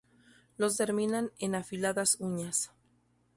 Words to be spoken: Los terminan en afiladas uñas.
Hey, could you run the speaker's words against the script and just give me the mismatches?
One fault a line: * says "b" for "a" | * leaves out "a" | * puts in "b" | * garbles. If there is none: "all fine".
all fine